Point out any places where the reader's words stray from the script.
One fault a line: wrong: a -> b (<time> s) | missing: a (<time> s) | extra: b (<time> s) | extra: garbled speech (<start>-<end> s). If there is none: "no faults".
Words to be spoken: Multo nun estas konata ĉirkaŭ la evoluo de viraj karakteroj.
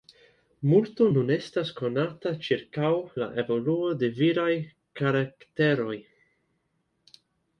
no faults